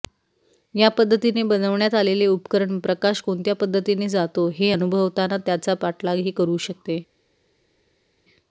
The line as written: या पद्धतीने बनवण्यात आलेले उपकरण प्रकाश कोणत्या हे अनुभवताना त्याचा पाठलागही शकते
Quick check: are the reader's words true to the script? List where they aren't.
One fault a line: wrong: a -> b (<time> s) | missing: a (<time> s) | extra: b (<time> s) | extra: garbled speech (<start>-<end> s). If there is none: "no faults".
extra: पद्धतीने जातो (3.6 s)
extra: करू (6.3 s)